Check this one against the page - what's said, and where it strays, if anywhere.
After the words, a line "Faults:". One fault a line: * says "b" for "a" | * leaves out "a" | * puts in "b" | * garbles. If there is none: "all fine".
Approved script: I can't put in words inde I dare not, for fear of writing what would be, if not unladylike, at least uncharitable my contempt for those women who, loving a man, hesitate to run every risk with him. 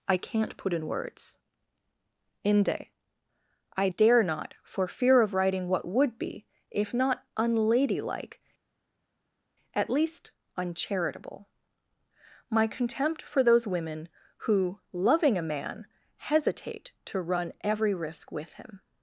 I can't put in words inde I dare not, for fear of writing what would be, if not unladylike, at least uncharitable my contempt for those women who, loving a man, hesitate to run every risk with him.
Faults:
all fine